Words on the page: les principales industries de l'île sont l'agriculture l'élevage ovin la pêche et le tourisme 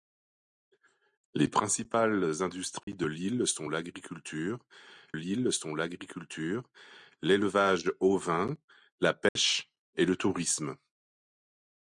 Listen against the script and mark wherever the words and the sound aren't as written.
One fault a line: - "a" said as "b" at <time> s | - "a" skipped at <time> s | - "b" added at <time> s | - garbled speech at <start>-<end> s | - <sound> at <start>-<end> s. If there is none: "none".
- dropout at 2.8-2.9 s
- "l'île sont l'agriculture" added at 5.1 s
- dropout at 9.3-9.4 s